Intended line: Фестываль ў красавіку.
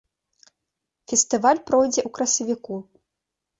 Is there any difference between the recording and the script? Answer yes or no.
yes